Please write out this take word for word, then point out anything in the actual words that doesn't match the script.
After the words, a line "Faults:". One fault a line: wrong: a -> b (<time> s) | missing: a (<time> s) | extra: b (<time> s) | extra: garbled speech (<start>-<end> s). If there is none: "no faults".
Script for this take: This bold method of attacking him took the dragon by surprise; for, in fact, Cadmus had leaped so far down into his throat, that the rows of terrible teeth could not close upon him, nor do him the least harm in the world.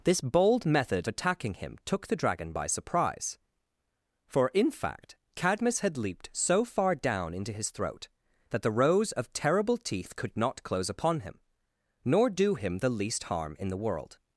This bold method attacking him took the dragon by surprise; for, in fact, Cadmus had leaped so far down into his throat, that the rows of terrible teeth could not close upon him, nor do him the least harm in the world.
Faults:
missing: of (1.1 s)